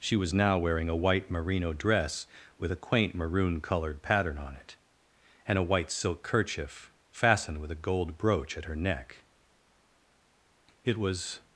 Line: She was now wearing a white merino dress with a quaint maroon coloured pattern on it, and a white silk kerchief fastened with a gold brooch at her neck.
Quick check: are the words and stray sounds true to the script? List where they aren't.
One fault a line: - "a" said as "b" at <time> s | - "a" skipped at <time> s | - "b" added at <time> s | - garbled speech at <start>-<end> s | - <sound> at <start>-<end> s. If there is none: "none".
- "It was" added at 10.8 s